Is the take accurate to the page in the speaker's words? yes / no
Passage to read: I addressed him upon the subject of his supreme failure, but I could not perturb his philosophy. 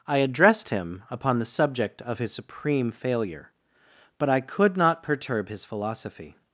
yes